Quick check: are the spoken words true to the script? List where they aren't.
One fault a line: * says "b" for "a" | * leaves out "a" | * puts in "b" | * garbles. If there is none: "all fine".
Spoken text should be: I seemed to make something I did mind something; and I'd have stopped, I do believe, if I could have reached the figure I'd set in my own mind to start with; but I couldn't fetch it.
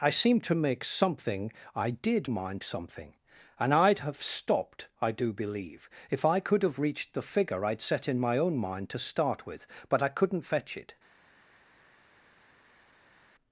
all fine